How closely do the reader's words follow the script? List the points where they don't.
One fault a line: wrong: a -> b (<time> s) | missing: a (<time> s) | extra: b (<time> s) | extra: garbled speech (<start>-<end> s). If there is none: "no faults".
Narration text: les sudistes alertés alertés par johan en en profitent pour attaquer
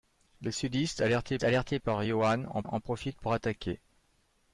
no faults